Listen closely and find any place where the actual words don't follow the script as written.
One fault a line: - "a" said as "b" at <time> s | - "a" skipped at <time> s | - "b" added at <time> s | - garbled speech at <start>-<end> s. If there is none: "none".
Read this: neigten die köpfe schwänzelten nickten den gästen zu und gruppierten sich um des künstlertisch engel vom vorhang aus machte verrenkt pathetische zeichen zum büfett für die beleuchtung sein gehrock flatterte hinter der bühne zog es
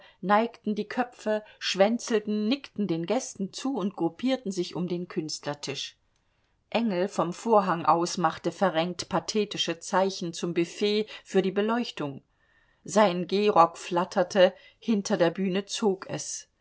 - "des" said as "den" at 4.9 s